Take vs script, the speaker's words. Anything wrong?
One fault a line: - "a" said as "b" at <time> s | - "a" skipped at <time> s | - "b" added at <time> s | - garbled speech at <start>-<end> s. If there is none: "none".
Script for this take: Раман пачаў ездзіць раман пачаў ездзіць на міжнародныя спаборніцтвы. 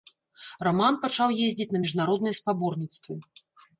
- "раман пачаў ездзіць" skipped at 1.7 s